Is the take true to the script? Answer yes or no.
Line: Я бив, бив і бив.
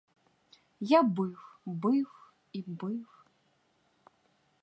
yes